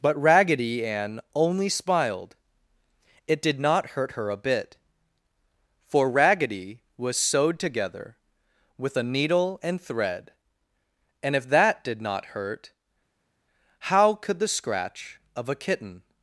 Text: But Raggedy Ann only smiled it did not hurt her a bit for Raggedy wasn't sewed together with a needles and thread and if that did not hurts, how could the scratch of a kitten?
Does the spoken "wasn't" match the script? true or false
false